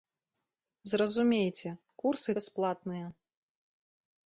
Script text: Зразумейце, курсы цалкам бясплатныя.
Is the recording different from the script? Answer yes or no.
yes